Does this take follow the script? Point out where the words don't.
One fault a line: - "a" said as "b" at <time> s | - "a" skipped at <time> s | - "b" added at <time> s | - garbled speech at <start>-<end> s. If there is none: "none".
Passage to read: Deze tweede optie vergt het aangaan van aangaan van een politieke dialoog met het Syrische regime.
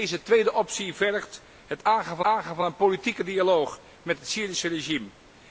none